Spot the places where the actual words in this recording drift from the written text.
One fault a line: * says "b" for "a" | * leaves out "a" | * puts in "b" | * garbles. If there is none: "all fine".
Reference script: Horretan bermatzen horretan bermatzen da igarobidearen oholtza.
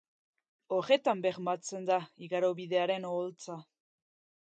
* leaves out "horretan bermatzen"